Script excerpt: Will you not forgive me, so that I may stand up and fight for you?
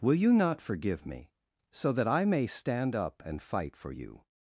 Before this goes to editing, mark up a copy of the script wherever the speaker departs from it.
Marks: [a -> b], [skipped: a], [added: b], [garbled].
Will you not forgive me, so that I may stand up and fight for you?